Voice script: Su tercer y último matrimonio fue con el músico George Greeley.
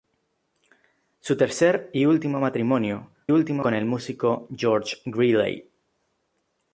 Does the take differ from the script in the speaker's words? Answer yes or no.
yes